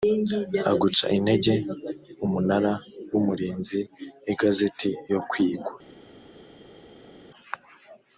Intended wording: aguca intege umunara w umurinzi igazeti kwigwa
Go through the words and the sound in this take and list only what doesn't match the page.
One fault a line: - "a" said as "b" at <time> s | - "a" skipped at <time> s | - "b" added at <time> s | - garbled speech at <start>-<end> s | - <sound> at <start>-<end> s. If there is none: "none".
- "yo" added at 5.1 s